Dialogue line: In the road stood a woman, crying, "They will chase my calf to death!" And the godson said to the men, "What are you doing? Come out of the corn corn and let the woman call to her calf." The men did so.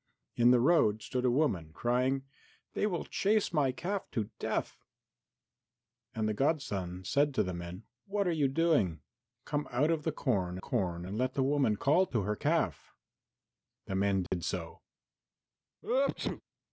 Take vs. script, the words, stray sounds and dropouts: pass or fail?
fail